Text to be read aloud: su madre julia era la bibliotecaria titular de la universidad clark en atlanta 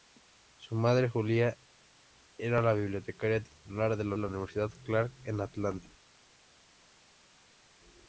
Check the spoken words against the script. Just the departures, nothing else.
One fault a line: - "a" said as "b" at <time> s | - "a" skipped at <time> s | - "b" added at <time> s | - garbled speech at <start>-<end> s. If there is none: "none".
- "la" added at 4.1 s